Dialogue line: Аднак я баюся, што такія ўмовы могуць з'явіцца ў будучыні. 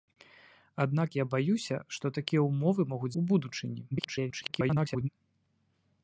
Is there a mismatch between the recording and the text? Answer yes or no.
yes